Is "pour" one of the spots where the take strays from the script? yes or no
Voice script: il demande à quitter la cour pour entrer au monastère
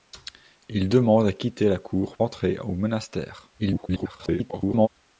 yes